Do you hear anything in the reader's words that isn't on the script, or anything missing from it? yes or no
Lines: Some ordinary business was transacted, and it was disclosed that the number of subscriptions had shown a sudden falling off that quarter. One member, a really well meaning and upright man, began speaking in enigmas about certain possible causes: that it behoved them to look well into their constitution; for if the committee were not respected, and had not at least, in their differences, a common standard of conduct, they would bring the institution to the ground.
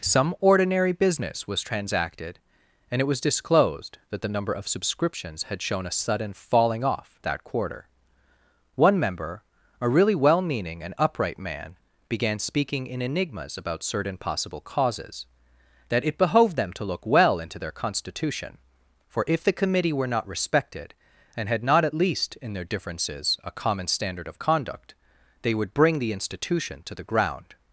no